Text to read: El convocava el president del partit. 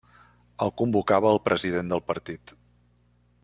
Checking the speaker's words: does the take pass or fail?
pass